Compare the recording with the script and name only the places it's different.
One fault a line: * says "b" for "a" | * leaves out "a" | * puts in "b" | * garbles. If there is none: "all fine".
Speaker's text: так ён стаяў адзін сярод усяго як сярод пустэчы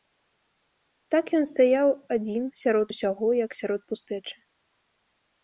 all fine